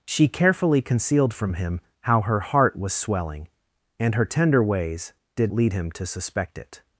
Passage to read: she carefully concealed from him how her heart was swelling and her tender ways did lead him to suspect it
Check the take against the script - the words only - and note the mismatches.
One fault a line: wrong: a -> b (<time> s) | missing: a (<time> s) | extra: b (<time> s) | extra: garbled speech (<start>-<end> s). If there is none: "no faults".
no faults